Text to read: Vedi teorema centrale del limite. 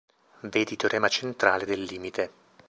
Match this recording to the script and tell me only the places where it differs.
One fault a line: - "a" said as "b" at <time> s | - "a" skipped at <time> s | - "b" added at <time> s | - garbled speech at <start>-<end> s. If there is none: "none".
none